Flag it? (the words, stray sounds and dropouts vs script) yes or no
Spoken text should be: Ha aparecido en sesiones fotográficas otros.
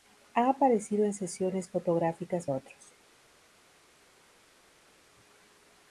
no